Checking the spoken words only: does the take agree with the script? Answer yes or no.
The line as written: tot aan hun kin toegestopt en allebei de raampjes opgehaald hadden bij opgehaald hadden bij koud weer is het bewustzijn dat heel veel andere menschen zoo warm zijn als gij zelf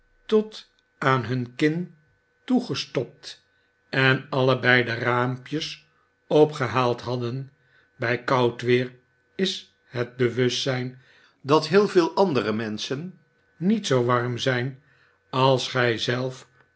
no